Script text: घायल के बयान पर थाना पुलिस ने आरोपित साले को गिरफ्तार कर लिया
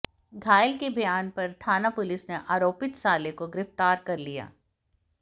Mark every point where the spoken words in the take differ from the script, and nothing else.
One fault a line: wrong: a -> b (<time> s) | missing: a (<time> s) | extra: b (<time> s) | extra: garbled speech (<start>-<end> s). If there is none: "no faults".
no faults